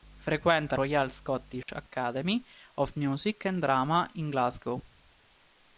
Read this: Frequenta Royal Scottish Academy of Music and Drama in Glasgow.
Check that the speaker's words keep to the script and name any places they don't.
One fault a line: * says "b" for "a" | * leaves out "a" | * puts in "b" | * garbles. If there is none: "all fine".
all fine